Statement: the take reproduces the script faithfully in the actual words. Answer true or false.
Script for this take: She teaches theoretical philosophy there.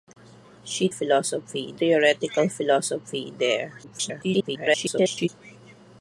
false